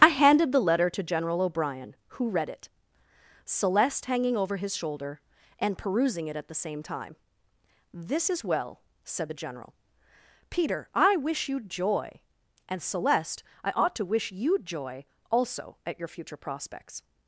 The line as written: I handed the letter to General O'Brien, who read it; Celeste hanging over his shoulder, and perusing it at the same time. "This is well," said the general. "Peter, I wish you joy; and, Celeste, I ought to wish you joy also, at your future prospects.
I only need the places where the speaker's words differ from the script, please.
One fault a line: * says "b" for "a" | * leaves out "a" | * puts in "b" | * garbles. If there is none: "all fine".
all fine